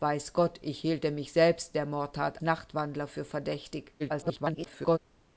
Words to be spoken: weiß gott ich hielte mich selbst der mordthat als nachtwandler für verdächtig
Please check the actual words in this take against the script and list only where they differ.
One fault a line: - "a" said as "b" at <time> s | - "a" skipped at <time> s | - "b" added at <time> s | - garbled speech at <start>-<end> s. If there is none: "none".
- "als" skipped at 2.4 s
- garbled speech at 4.0-5.0 s